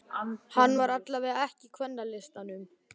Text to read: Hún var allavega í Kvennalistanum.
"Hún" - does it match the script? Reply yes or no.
no